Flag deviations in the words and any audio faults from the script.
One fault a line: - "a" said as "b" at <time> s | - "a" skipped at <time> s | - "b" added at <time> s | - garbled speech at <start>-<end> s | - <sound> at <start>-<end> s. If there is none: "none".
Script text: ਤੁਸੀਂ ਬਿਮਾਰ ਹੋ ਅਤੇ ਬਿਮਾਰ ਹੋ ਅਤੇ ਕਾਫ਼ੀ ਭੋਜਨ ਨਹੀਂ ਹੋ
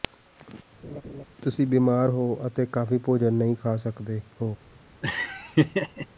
- laugh at 0.8-1.2 s
- "ਬਿਮਾਰ ਹੋ ਅਤੇ" skipped at 2.7 s
- "ਖਾ ਸਕਦੇ" added at 3.6 s
- laugh at 5.0-6.1 s